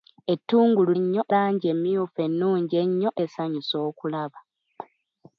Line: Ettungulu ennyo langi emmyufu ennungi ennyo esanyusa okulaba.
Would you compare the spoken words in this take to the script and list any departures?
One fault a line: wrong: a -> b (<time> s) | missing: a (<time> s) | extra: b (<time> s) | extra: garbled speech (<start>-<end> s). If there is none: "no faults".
no faults